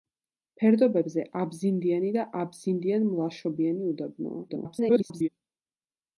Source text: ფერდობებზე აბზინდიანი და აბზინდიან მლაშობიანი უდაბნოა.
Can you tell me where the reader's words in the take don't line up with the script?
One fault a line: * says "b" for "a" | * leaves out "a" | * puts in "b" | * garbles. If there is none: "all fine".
* garbles